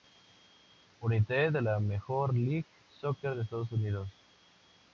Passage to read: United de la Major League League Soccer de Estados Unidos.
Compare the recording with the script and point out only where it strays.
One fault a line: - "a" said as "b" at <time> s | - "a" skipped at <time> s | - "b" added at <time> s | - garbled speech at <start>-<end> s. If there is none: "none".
- "League" skipped at 2.7 s